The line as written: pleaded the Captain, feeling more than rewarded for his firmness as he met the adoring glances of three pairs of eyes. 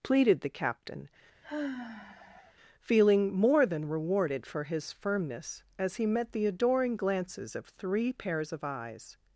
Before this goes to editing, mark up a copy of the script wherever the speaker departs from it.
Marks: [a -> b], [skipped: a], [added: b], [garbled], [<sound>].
pleaded the Captain, [sigh] feeling more than rewarded for his firmness as he met the adoring glances of three pairs of eyes.